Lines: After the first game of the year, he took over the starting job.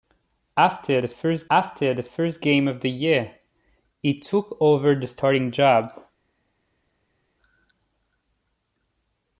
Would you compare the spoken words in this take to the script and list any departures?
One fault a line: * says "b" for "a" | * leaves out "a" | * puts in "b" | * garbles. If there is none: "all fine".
* puts in "after the first"